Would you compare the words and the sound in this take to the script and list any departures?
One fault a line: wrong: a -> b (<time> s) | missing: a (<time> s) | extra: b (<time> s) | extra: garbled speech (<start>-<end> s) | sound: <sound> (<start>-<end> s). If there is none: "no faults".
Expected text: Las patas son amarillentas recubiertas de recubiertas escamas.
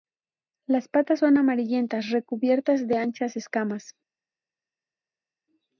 wrong: recubiertas -> anchas (3.0 s)